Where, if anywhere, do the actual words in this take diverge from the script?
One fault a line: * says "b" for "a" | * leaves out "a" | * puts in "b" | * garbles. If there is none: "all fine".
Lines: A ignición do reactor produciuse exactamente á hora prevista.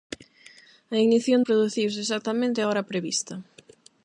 * leaves out "do reactor"